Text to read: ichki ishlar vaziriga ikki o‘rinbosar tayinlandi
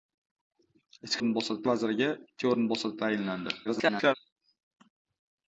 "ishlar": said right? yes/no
no